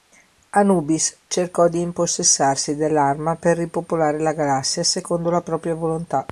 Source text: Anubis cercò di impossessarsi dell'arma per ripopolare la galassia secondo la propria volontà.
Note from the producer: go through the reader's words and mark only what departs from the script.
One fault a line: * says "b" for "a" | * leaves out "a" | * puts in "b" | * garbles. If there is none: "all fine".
all fine